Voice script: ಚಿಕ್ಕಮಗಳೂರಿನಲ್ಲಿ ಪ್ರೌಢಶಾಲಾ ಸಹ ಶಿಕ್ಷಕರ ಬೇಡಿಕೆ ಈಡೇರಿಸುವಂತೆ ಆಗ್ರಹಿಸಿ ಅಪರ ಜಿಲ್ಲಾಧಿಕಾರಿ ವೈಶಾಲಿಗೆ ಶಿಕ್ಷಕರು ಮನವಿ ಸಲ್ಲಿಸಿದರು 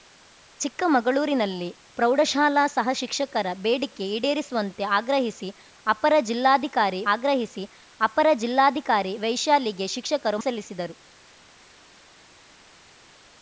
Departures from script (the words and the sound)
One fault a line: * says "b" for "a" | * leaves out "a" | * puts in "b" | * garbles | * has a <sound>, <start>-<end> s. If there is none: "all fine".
* puts in "ಆಗ್ರಹಿಸಿ ಅಪರ ಜಿಲ್ಲಾಧಿಕಾರಿ"
* leaves out "ಮನವಿ"